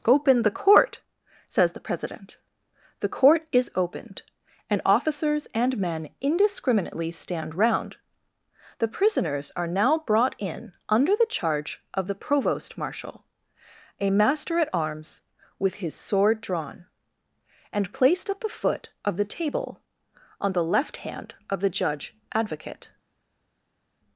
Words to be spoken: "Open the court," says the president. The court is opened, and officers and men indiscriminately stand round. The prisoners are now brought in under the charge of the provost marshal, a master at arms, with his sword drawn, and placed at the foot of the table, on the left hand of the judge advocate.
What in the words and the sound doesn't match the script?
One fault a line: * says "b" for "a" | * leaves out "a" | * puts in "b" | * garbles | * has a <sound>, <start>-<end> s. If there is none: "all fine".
all fine